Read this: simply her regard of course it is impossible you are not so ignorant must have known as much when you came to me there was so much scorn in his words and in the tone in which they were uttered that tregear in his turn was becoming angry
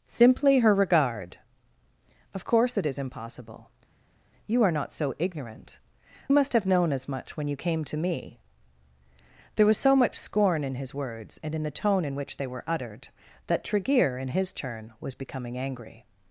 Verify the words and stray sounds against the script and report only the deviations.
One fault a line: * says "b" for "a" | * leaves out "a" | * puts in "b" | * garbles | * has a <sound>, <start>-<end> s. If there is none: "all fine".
all fine